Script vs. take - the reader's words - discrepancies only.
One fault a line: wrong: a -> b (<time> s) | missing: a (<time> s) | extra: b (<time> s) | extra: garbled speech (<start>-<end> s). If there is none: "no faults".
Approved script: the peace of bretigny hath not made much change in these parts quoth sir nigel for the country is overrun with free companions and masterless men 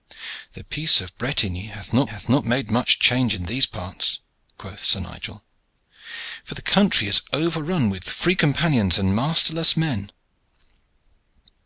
extra: hath not (2.0 s)